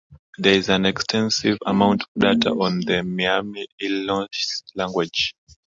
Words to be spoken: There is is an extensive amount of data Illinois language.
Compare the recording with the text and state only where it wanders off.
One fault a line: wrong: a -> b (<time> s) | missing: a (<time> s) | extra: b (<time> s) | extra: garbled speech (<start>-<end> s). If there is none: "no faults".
missing: is (0.7 s)
extra: on the Miami (2.5 s)